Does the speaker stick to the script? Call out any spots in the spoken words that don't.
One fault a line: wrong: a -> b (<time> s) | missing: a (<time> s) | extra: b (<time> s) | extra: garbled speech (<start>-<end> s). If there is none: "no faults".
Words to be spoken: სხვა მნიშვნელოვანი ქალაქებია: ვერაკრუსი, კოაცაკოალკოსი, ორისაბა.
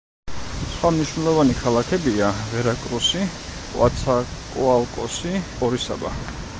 no faults